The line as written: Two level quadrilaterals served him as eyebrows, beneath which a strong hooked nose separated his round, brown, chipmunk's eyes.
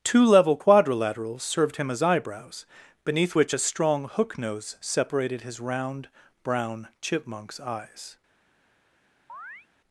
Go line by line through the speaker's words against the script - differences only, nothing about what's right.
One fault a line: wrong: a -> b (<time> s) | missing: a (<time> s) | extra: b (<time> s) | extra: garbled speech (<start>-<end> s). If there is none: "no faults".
wrong: hooked -> hook (4.1 s)